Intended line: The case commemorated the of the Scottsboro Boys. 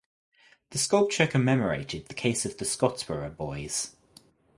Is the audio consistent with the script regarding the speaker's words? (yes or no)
no